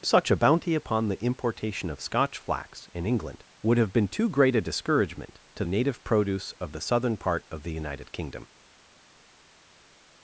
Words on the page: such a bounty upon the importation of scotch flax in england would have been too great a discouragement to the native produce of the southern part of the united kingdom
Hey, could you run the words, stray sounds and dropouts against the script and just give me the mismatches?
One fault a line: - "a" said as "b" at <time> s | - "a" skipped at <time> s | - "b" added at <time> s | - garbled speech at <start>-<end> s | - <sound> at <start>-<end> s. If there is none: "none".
- "the" skipped at 5.6 s